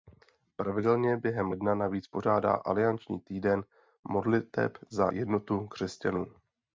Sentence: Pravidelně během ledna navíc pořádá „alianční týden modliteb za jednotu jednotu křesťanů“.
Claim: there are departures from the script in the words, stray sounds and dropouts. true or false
true